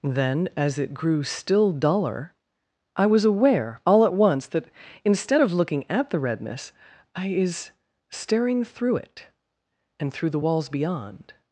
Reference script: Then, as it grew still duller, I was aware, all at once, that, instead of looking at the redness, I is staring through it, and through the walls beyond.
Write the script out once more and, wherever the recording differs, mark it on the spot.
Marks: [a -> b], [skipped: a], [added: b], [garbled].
Then, as it grew still duller, I was aware, all at once, that, instead of looking at the redness, I is staring through it, and through the walls beyond.